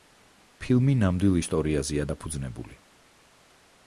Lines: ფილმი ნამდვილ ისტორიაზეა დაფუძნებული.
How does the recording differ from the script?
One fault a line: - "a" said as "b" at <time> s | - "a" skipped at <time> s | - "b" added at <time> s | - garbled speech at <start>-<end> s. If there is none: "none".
none